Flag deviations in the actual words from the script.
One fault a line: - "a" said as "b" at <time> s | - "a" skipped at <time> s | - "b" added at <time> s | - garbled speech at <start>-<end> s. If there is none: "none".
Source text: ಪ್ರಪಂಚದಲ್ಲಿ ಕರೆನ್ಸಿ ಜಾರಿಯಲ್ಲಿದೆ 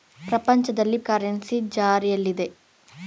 none